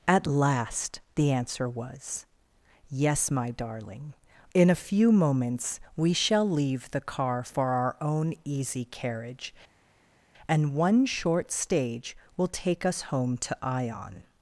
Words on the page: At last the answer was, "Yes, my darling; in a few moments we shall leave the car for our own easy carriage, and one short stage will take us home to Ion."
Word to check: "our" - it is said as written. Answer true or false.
true